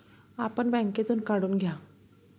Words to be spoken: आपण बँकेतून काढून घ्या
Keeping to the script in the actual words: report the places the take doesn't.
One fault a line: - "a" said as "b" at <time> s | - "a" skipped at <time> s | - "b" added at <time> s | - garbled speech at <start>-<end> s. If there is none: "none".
none